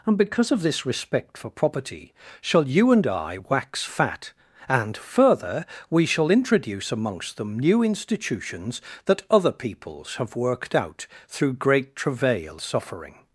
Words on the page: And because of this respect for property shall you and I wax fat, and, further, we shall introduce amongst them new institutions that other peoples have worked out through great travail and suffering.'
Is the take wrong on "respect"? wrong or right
right